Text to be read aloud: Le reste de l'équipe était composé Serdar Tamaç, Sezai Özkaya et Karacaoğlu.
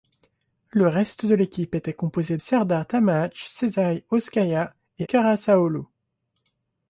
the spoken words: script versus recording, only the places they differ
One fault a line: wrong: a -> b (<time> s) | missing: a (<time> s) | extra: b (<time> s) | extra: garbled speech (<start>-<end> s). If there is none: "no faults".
no faults